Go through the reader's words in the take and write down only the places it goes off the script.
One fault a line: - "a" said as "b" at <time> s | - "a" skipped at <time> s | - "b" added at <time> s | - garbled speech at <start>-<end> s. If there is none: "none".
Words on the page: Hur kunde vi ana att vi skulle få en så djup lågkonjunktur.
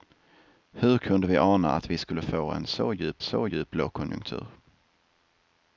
- "så djup" added at 3.2 s